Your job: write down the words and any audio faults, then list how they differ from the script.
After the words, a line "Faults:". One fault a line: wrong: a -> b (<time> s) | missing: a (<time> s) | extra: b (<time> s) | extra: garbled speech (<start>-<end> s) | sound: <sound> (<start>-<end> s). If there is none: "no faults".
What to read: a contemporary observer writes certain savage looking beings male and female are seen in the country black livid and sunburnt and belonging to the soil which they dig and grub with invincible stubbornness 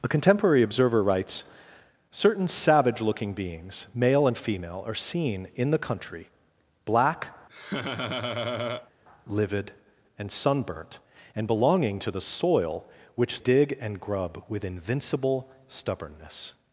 a contemporary observer writes certain savage looking beings male and female are seen in the country black livid and sunburnt and belonging to the soil which dig and grub with invincible stubbornness
Faults:
sound: laugh (7.5-8.9 s)
missing: they (13.4 s)